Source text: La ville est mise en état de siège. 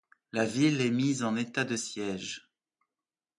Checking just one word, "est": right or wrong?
right